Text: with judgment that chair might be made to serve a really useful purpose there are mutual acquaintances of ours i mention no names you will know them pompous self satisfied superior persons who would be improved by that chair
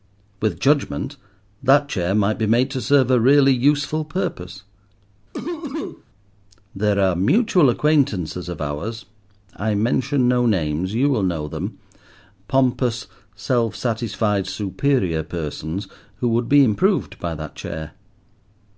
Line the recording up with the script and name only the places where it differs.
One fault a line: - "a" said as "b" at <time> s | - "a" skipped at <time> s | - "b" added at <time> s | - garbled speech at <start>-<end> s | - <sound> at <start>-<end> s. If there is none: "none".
- cough at 5.3-6.0 s